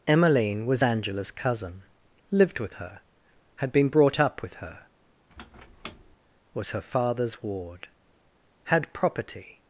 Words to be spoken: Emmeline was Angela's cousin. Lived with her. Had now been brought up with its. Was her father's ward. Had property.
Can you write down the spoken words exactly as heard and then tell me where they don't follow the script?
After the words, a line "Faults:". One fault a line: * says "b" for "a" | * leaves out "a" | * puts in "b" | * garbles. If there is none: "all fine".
Emmeline was Angela's cousin. Lived with her. Had been brought up with her. Was her father's ward. Had property.
Faults:
* leaves out "now"
* says "her" for "its"